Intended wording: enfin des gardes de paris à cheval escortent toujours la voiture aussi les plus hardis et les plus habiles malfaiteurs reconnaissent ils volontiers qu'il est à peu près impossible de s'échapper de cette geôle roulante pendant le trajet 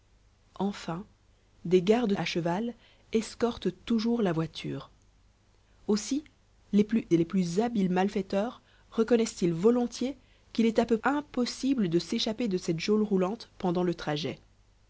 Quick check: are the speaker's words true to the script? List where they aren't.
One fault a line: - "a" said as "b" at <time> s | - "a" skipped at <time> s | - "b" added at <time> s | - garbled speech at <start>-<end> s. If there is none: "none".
- "de paris" skipped at 2.1 s
- "hardis" skipped at 7.1 s
- "près" skipped at 11.0 s